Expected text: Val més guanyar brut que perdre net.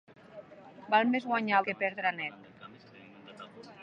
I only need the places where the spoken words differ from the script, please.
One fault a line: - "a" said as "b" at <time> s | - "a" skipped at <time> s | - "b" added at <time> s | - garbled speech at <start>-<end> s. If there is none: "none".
- "brut" skipped at 1.6 s